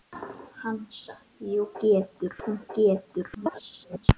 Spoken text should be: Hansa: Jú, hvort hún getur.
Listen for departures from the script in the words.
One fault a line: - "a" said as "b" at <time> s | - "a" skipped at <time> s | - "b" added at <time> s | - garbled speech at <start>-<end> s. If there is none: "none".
- "hvort" said as "getur" at 1.8 s
- garbled speech at 3.3-4.1 s